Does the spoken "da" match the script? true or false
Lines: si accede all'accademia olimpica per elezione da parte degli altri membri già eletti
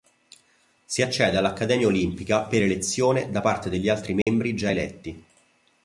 true